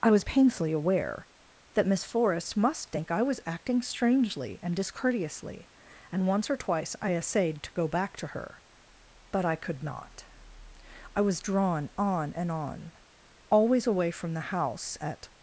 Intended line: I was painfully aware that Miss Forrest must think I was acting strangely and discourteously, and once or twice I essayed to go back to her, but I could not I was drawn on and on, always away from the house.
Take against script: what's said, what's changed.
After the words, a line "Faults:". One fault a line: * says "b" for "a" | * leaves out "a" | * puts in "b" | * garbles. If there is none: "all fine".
I was painfully aware that Miss Forrest must think I was acting strangely and discourteously, and once or twice I essayed to go back to her, but I could not I was drawn on and on, always away from the house. At
Faults:
* puts in "At"